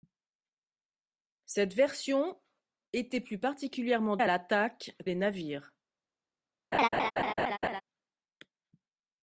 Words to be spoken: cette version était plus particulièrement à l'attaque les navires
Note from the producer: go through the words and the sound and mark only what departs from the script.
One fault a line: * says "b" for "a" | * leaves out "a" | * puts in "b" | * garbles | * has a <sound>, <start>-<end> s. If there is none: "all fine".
* has a laugh, 6.7-7.8 s